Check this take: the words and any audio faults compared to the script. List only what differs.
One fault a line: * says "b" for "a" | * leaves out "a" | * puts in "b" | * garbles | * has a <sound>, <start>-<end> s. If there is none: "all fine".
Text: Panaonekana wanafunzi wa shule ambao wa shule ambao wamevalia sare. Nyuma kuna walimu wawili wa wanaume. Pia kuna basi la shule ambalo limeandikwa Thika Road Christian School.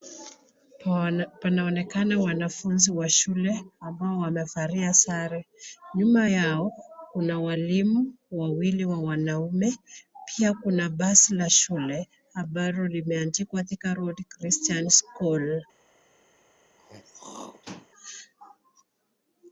* leaves out "wa shule ambao"
* puts in "yao"
* has a throat clearing, 16.8-17.9 s